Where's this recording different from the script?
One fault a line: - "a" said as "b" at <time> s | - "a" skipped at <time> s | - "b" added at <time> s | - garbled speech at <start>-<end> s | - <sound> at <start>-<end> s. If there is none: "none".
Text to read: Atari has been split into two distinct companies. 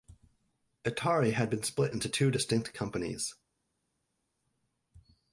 - "has" said as "had" at 1.3 s